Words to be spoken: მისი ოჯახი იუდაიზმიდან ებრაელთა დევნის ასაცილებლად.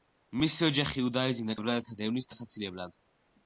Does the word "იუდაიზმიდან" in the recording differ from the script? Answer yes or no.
no